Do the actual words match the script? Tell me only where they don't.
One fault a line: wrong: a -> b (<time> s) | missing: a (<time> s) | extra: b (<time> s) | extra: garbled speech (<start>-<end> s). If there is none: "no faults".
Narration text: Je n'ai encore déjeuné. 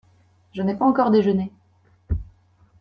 extra: pas (0.7 s)